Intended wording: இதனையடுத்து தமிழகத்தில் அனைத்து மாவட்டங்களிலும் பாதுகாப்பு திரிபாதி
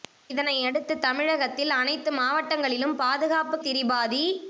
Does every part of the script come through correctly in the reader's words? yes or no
yes